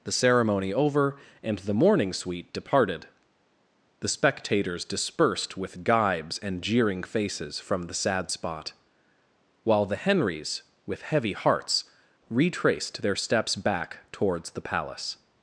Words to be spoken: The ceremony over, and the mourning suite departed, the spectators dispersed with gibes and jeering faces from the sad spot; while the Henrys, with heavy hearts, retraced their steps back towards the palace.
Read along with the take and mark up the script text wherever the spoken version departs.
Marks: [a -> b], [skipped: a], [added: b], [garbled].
The ceremony over, and the mourning suite departed, the spectators dispersed with gibes and jeering faces from the sad spot; while the Henrys, with heavy hearts, retraced their steps back towards the palace.